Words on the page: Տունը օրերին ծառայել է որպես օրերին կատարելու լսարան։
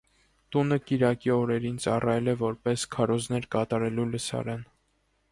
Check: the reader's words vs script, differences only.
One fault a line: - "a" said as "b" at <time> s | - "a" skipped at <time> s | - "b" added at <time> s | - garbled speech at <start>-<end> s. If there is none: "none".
- "կիրակի" added at 0.9 s
- "օրերին" said as "քարոզներ" at 3.0 s